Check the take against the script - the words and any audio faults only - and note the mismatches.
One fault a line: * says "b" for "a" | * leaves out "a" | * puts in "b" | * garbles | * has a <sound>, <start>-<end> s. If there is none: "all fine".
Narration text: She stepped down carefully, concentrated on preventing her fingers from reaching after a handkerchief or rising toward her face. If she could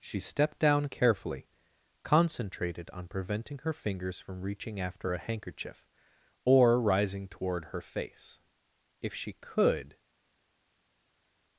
all fine